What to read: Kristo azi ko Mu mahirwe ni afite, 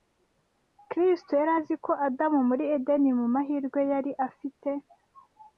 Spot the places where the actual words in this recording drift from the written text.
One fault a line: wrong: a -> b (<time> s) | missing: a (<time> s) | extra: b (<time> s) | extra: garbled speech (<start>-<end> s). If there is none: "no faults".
extra: yari (1.4 s)
extra: Adamu muri Edeni (2.1 s)
wrong: ni -> yari (3.9 s)